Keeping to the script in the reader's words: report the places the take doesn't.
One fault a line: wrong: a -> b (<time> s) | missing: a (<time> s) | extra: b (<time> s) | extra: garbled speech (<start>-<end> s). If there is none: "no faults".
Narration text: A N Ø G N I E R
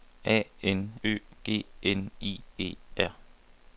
no faults